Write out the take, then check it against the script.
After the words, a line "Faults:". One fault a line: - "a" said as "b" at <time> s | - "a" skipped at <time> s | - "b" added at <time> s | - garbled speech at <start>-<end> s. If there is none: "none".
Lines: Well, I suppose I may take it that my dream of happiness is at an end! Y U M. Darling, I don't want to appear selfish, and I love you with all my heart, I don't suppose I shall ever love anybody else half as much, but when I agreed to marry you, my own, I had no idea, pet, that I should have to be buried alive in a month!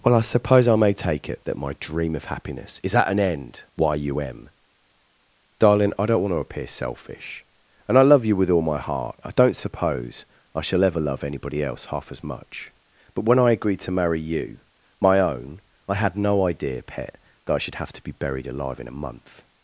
Well, I suppose I may take it that my dream of happiness is at an end! Y U M. Darling, I don't want to appear selfish, and I love you with all my heart, I don't suppose I shall ever love anybody else half as much, but when I agreed to marry you, my own, I had no idea, pet, that I should have to be buried alive in a month!
Faults:
none